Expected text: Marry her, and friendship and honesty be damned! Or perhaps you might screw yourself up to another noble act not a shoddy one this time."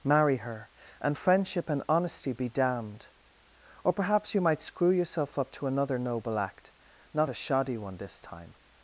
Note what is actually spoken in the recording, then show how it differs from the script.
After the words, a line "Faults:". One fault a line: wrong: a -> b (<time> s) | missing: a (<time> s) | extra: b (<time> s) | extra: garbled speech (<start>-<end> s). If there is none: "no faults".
Marry her, and friendship and honesty be damned! Or perhaps you might screw yourself up to another noble act not a shoddy one this time."
Faults:
no faults